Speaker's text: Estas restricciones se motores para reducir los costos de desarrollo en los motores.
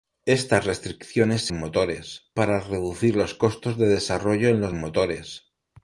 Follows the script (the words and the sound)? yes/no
yes